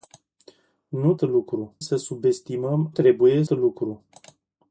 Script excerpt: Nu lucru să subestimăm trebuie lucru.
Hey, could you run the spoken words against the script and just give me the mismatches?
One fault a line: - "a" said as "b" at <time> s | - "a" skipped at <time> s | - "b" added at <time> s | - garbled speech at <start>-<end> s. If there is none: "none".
none